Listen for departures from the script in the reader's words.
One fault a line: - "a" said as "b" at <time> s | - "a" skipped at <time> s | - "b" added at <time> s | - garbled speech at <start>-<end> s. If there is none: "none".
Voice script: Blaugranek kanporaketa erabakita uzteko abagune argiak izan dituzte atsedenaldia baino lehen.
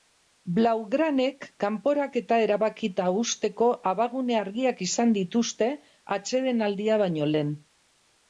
none